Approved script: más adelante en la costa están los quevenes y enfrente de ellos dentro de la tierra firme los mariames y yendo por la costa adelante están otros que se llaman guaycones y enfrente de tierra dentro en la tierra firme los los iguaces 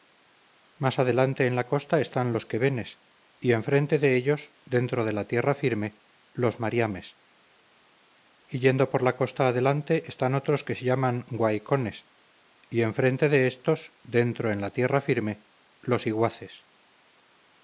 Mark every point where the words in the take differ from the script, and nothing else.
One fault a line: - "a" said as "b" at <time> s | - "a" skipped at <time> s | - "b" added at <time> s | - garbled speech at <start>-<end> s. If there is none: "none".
- "tierra" said as "éstos" at 13.5 s
- "los" skipped at 16.0 s